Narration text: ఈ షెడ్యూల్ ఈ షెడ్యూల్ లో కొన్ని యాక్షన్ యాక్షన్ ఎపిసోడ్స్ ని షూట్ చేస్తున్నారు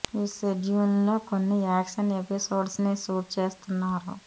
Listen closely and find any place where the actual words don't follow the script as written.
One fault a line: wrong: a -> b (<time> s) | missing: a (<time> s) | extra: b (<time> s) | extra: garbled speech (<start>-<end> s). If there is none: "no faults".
missing: ఈ షెడ్యూల్ (0.9 s)
missing: యాక్షన్ (2.1 s)